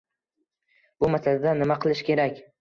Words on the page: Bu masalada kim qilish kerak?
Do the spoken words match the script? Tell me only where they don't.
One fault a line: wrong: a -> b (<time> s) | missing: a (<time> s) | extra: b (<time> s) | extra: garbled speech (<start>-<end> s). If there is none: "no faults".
wrong: kim -> nima (1.6 s)